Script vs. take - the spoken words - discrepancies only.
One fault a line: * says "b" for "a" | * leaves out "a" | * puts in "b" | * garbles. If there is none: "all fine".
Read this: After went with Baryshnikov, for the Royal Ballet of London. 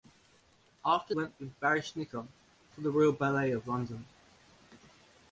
all fine